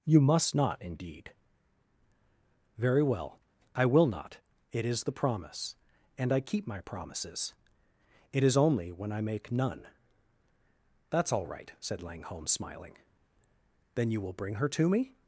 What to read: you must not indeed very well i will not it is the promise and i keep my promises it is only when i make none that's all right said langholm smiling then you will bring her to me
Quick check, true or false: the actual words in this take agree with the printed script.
true